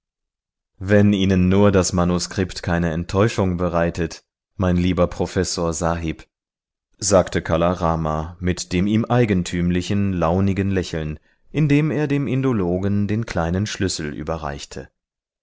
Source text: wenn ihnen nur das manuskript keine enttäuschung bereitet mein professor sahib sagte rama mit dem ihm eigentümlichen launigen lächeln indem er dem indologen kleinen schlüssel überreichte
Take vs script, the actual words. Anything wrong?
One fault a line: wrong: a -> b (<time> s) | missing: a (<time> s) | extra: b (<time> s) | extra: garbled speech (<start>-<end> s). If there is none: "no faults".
extra: lieber (4.8 s)
extra: kala (7.4 s)
extra: den (13.1 s)